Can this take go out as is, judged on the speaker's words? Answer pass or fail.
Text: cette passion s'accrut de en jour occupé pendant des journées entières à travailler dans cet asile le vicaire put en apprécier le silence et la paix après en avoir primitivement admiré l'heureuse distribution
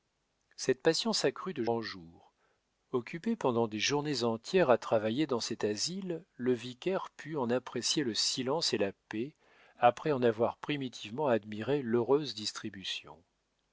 pass